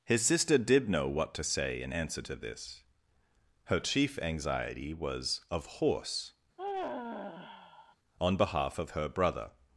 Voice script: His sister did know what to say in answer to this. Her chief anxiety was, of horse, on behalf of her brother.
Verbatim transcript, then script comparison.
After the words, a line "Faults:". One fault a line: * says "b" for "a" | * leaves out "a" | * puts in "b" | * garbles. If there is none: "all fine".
His sister did know what to say in answer to this. Her chief anxiety was, of horse, on behalf of her brother.
Faults:
all fine